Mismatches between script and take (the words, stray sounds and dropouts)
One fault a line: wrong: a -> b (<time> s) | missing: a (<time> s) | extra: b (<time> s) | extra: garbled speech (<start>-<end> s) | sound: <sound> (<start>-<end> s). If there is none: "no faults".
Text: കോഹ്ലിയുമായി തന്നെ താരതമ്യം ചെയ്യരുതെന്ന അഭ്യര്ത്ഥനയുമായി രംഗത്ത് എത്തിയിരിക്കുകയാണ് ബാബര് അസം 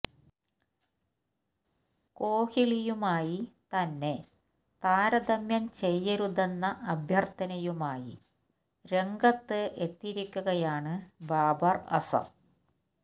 no faults